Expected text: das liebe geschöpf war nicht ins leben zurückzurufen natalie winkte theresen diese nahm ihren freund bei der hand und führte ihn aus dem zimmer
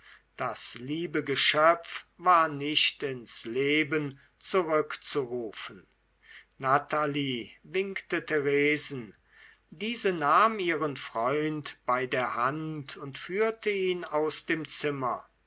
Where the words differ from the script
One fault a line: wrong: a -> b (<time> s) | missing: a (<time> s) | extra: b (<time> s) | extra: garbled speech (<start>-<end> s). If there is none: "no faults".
no faults